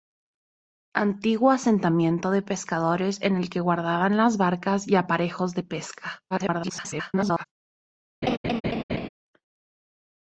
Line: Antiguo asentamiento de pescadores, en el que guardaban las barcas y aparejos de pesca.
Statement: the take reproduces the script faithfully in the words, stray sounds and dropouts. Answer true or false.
false